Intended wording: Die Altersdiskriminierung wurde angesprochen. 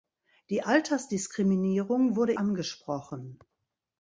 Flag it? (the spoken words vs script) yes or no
no